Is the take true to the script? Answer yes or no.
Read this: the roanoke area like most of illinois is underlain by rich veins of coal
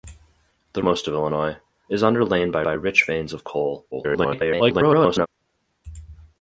no